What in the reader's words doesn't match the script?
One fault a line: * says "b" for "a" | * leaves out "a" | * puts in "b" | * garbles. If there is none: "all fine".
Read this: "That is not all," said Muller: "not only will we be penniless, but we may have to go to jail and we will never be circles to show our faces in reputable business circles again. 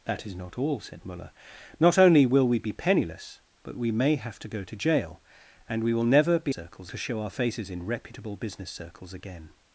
all fine